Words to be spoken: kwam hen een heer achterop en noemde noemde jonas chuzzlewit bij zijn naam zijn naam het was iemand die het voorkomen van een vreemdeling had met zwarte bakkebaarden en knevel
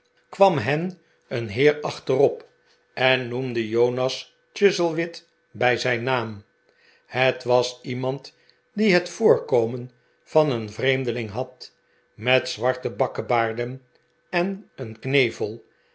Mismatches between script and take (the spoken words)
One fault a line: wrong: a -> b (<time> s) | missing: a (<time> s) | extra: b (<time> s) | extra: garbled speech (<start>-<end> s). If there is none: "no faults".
missing: noemde (3.7 s)
missing: zijn naam (6.4 s)
extra: een (14.7 s)